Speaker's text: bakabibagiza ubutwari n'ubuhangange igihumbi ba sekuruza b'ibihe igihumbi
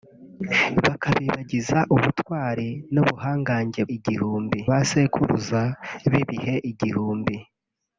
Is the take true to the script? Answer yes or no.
yes